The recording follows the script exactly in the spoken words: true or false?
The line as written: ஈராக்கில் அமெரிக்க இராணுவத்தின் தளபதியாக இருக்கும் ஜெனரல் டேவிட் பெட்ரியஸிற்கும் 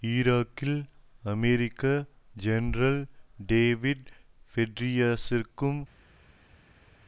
false